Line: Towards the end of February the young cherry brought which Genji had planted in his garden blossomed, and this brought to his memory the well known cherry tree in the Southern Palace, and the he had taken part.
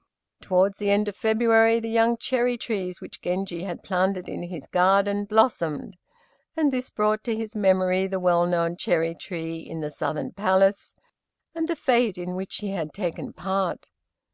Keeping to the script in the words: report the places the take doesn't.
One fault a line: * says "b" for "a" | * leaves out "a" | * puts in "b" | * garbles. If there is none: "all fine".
* says "trees" for "brought"
* puts in "fête in which"